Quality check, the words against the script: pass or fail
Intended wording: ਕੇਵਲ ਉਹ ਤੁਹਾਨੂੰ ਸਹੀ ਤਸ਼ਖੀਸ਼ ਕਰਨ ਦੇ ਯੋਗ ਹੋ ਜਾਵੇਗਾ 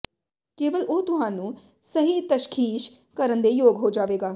pass